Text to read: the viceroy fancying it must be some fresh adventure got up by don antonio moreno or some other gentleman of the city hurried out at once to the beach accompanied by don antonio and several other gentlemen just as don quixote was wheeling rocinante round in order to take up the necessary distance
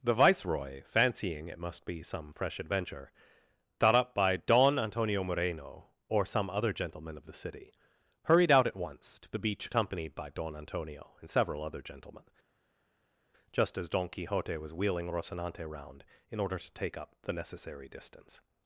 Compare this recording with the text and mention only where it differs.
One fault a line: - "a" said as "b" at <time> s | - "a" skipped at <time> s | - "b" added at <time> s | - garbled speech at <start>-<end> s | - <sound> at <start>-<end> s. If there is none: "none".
- "got" said as "thought" at 3.8 s